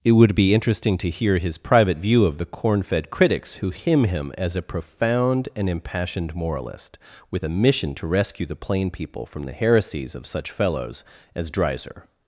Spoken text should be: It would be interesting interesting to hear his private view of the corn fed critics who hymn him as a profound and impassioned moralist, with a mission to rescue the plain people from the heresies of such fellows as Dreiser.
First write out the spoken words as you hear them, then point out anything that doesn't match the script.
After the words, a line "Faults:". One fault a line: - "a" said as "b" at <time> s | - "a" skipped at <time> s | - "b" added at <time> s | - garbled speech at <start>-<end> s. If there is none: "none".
It would be interesting to hear his private view of the corn fed critics who hymn him as a profound and impassioned moralist, with a mission to rescue the plain people from the heresies of such fellows as Dreiser.
Faults:
- "interesting" skipped at 1.0 s